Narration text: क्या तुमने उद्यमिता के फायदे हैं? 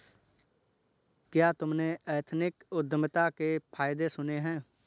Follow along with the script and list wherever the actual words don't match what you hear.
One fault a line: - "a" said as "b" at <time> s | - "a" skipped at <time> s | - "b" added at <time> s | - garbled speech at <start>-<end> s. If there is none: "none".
- "एथनिक" added at 2.1 s
- "सुने" added at 4.1 s